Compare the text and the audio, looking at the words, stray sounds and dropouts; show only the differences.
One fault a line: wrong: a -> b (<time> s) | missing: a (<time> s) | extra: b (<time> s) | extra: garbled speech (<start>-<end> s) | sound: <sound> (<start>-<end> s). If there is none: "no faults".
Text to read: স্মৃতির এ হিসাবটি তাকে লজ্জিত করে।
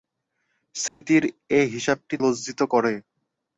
sound: dropout (0.9-1.0 s)
missing: তাকে (2.1 s)